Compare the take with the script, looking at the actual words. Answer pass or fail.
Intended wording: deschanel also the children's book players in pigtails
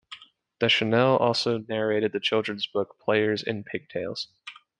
fail